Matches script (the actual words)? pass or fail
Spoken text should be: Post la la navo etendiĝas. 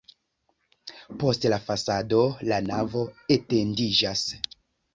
fail